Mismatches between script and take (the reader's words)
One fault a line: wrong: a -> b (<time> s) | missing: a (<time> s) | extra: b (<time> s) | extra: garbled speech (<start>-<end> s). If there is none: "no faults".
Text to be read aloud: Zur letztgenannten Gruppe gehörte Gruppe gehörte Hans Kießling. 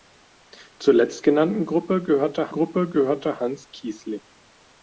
no faults